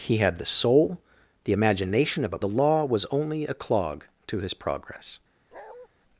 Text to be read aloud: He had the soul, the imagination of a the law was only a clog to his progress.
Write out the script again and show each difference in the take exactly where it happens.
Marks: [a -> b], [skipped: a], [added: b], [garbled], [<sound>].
He had the soul, the imagination of a the law was only a clog to his progress. [bark]